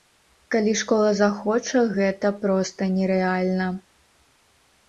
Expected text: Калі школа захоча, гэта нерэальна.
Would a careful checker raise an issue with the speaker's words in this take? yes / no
yes